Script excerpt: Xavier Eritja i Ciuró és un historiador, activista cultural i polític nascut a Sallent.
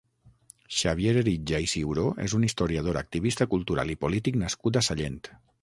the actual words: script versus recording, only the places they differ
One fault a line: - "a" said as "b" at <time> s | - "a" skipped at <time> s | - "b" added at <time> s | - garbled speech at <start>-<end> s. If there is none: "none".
none